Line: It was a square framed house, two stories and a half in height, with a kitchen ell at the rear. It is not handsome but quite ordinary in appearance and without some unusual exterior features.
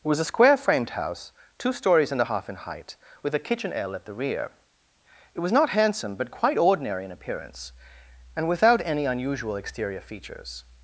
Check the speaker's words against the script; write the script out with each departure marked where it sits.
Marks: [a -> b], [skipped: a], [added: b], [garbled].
It was a square framed house, two stories and a half in height, with a kitchen ell at the rear. It [is -> was] not handsome but quite ordinary in appearance and without [some -> any] unusual exterior features.